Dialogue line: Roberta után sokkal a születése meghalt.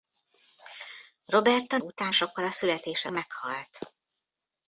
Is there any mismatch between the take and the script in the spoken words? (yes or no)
no